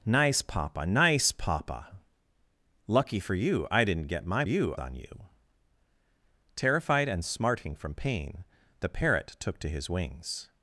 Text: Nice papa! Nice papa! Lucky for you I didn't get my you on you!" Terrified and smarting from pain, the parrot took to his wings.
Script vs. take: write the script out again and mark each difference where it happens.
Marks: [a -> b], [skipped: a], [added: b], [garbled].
Nice papa! Nice papa! Lucky for you I didn't get my you on you!" Terrified and smarting from pain, the parrot took to his wings.